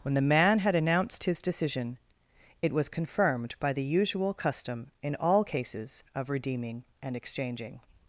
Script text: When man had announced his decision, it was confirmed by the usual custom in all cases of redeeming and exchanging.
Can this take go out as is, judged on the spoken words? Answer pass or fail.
fail